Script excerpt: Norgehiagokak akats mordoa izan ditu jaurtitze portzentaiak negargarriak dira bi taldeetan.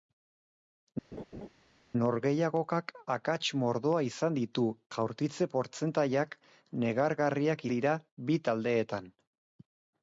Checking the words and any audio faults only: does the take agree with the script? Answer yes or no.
no